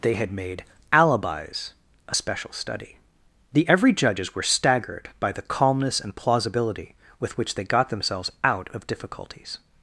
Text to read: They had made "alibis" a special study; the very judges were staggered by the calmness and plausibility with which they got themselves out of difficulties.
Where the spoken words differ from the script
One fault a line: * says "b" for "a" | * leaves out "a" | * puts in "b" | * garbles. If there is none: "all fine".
* says "every" for "very"